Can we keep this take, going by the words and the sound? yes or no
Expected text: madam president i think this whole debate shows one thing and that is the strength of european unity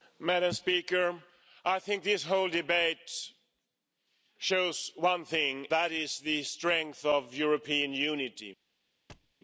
no